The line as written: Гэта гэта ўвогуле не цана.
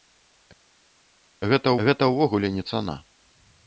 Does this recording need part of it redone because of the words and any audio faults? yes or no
no